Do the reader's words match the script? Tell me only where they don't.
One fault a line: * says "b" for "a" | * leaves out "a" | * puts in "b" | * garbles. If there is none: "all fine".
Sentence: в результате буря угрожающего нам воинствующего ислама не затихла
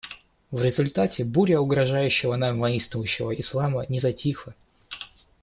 all fine